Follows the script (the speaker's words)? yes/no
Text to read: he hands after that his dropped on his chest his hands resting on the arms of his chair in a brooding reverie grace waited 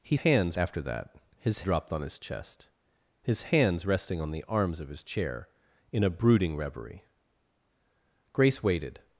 yes